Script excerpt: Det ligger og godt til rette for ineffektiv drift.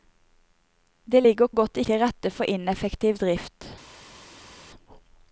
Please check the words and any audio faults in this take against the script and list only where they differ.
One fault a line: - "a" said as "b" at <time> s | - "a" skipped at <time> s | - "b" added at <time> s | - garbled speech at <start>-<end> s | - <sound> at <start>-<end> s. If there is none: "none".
none